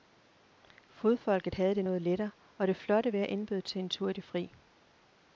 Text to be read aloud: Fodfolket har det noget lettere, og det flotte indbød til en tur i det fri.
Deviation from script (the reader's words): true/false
true